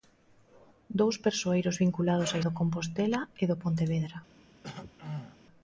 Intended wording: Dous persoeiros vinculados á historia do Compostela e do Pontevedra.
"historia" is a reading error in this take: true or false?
true